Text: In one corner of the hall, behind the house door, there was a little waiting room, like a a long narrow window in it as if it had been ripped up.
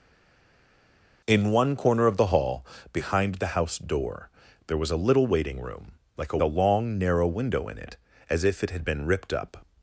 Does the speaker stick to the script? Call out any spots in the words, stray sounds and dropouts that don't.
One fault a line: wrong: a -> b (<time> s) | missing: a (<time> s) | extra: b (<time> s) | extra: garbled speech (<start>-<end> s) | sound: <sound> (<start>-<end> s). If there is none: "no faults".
no faults